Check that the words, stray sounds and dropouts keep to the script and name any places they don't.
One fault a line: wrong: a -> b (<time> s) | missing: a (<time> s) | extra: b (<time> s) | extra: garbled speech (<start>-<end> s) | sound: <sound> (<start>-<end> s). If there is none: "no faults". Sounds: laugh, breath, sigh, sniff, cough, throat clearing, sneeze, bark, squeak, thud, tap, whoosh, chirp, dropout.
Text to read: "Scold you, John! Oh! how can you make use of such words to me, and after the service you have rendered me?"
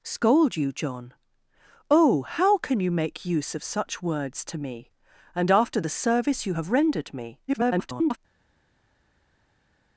extra: garbled speech (7.5-8.2 s)